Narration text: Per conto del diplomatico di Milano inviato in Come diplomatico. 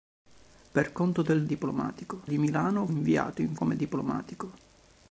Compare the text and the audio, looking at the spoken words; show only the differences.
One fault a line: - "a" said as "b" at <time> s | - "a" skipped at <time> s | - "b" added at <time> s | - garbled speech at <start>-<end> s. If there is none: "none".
none